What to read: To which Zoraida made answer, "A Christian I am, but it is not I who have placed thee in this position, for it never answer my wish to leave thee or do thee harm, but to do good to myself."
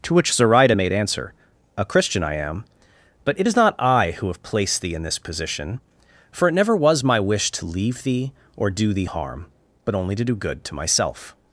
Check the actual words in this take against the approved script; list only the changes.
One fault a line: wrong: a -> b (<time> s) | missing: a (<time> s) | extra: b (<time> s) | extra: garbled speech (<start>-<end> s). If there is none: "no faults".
wrong: answer -> was (6.8 s)
extra: only (9.9 s)